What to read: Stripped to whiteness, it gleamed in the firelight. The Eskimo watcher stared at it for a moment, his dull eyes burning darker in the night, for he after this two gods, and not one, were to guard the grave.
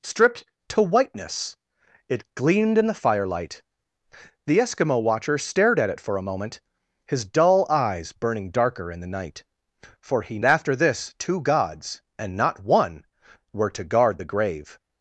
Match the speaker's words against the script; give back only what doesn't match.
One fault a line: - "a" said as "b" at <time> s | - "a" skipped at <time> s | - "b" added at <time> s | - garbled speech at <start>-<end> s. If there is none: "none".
none